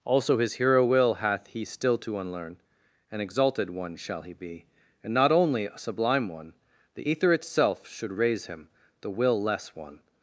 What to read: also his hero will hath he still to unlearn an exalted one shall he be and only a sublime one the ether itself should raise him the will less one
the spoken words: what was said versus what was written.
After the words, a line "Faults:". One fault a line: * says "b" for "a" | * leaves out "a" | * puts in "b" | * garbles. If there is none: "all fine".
also his hero will hath he still to unlearn an exalted one shall he be and not only a sublime one the ether itself should raise him the will less one
Faults:
* puts in "not"